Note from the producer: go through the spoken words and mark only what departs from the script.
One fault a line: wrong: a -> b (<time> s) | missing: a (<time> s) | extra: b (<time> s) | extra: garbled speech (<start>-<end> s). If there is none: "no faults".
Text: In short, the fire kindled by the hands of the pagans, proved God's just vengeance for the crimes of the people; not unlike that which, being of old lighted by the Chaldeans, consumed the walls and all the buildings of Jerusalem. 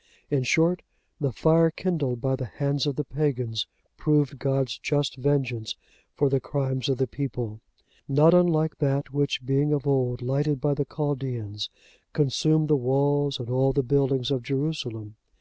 no faults